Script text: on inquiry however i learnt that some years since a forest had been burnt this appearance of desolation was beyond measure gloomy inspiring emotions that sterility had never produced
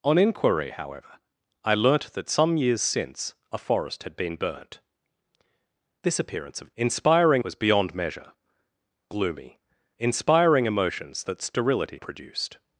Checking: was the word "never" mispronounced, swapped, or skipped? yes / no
yes